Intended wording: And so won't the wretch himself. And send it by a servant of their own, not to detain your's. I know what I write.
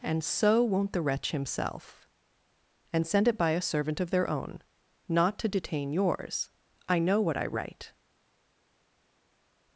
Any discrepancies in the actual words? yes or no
no